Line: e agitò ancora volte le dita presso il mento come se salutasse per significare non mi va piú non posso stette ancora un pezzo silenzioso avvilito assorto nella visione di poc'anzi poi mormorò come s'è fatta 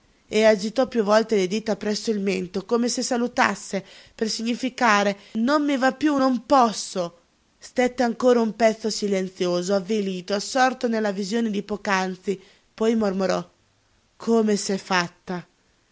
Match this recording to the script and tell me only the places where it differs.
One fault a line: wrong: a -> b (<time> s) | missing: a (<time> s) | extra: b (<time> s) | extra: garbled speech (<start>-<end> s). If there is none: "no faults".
wrong: ancora -> piú (0.9 s)